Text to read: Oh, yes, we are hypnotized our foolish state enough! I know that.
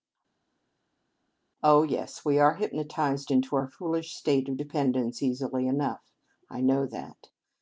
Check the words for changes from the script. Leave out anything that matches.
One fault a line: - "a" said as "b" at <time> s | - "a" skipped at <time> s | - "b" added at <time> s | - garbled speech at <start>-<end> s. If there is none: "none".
- "into" added at 3.3 s
- "of dependence easily" added at 4.5 s